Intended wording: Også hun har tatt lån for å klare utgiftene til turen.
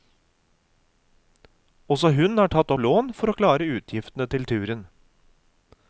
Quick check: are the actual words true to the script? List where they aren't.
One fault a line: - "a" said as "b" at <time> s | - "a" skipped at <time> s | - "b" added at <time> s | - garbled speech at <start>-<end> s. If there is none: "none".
none